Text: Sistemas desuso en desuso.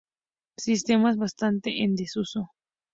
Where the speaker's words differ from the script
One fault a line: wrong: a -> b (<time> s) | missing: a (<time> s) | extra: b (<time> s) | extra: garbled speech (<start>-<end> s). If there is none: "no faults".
wrong: desuso -> bastante (1.2 s)